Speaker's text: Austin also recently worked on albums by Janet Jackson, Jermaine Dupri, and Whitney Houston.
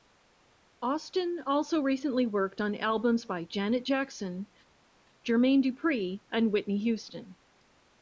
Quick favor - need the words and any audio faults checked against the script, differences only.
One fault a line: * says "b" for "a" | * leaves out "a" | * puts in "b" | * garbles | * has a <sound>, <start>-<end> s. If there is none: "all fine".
all fine